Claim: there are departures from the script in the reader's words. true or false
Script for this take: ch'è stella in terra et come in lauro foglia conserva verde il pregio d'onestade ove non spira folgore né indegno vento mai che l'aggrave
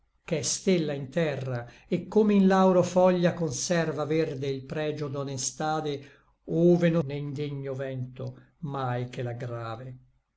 true